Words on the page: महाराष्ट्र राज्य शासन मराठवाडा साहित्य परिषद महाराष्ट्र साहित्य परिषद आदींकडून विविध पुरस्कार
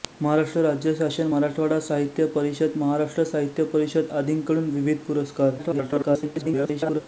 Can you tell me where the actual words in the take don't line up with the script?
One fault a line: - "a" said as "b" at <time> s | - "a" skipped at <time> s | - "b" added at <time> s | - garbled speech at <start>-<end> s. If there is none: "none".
- garbled speech at 5.6-7.0 s